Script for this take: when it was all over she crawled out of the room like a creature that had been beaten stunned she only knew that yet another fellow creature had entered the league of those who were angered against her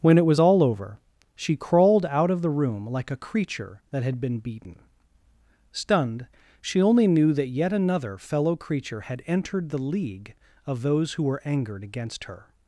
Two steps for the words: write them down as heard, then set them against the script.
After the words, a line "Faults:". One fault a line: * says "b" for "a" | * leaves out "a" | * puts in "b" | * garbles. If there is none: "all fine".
when it was all over she crawled out of the room like a creature that had been beaten stunned she only knew that yet another fellow creature had entered the league of those who were angered against her
Faults:
all fine